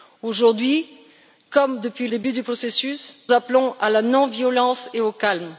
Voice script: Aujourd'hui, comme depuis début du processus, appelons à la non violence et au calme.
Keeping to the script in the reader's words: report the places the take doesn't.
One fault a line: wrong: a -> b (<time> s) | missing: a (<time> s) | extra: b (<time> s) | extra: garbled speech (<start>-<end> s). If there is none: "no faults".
no faults